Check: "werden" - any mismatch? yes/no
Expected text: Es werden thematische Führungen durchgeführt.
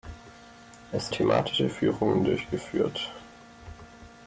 yes